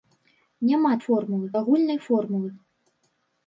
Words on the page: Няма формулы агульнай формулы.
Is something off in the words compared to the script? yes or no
no